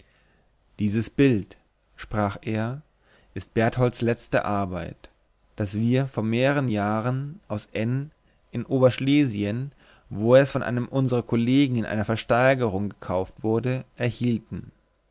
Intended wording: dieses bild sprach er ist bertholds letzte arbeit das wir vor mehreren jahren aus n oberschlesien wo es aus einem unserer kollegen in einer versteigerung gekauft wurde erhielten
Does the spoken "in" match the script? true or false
true